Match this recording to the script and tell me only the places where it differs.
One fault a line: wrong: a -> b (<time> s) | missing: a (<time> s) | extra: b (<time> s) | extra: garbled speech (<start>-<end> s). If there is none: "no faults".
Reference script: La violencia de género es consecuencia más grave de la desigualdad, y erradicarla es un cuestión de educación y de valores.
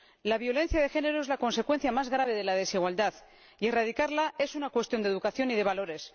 extra: la (1.3 s)
wrong: un -> una (4.5 s)